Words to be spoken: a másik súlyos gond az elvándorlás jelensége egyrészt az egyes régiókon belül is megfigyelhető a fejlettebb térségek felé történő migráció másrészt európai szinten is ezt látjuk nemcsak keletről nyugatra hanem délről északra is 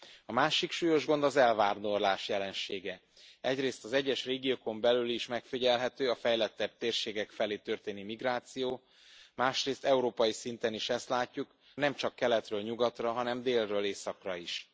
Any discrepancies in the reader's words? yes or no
no